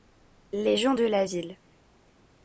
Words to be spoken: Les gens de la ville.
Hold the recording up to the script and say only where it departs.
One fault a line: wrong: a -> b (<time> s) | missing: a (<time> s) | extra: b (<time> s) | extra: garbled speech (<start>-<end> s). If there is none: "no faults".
no faults